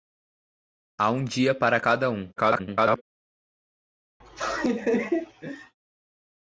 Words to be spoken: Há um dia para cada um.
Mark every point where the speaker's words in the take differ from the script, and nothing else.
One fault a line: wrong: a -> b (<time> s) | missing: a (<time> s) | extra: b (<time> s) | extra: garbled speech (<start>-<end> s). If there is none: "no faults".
extra: garbled speech (2.4-3.0 s)